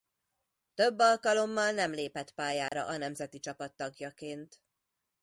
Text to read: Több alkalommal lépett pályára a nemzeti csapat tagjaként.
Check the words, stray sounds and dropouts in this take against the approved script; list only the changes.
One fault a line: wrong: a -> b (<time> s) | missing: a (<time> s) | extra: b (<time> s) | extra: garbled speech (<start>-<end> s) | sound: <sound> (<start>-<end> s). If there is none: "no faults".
extra: nem (1.7 s)
sound: dropout (2.7-2.7 s)